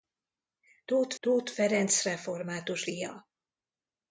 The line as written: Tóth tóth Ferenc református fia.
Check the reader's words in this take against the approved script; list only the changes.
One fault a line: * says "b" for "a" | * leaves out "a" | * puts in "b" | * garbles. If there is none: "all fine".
all fine